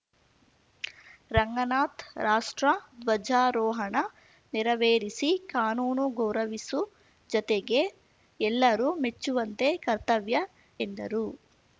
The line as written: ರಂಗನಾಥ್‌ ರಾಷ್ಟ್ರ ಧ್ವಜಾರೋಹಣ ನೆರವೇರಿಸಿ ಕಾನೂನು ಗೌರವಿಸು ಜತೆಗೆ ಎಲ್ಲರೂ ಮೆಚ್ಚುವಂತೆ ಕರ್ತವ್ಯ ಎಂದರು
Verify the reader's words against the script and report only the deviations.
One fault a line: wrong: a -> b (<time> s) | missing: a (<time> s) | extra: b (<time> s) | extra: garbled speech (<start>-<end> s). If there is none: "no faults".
no faults